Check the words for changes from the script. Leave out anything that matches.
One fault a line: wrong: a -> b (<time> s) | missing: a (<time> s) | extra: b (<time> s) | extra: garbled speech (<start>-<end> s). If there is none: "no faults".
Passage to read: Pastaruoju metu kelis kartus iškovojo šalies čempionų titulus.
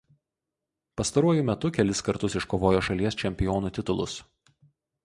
no faults